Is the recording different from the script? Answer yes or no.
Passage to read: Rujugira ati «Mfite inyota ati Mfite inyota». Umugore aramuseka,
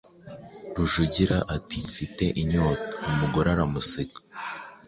yes